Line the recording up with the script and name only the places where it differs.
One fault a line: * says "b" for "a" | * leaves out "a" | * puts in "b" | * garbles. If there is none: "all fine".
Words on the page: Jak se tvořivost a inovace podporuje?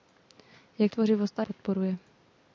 * leaves out "se"
* leaves out "inovace"